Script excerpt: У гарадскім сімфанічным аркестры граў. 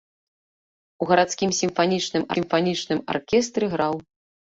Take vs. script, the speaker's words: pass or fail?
fail